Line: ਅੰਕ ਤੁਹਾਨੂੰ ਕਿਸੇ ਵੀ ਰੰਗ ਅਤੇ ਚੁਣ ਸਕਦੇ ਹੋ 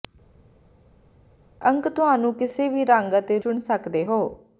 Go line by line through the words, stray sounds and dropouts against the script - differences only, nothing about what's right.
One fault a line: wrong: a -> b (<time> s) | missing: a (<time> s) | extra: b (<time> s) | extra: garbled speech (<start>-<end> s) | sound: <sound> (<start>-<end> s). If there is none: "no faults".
no faults